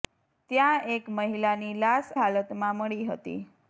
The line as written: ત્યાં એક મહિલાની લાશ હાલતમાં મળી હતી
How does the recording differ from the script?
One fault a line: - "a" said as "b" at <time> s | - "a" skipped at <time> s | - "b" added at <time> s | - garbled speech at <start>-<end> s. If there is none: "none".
none